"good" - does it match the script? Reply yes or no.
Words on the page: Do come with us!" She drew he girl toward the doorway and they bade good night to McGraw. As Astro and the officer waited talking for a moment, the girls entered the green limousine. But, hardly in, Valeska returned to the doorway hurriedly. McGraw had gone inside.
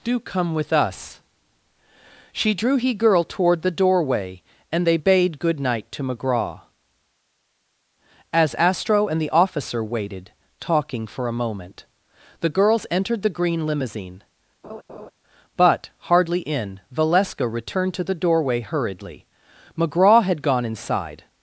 yes